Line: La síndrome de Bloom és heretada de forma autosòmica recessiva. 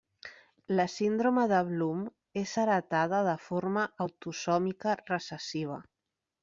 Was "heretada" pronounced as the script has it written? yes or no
yes